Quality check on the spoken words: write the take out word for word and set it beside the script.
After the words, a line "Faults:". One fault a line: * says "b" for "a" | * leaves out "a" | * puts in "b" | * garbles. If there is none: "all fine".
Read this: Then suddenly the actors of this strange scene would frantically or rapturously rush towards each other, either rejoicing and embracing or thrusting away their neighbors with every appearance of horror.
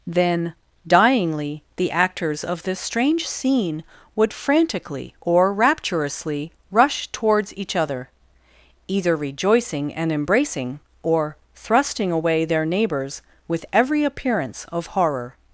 Then dyingly the actors of this strange scene would frantically or rapturously rush towards each other, either rejoicing and embracing or thrusting away their neighbors with every appearance of horror.
Faults:
* says "dyingly" for "suddenly"